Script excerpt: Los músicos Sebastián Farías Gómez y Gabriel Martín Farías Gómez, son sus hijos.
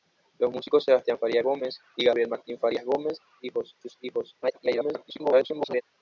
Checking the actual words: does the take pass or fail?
fail